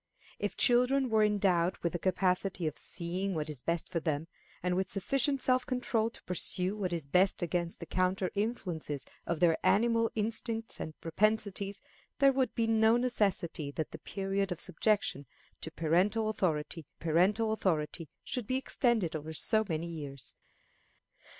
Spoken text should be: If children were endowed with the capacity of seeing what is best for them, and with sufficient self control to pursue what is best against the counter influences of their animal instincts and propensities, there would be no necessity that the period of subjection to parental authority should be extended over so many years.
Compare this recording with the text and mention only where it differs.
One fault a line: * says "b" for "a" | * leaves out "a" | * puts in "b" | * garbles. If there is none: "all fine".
* puts in "parental authority"